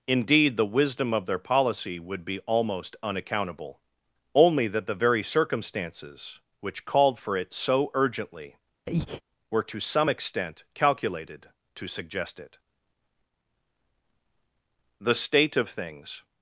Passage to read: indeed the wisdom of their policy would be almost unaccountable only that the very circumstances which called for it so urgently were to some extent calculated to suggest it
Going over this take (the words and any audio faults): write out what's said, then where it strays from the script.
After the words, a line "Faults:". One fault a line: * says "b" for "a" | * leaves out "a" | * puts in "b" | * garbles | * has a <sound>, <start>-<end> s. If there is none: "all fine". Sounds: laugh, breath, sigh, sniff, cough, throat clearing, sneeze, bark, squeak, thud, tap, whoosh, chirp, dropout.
indeed the wisdom of their policy would be almost unaccountable only that the very circumstances which called for it so urgently were to some extent calculated to suggest it the state of things
Faults:
* has a breath, 8.9-9.2 s
* puts in "the state of things"